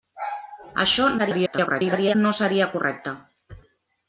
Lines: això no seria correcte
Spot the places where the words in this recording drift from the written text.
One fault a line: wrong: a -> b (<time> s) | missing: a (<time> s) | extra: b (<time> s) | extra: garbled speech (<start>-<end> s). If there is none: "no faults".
extra: garbled speech (1.2-2.2 s)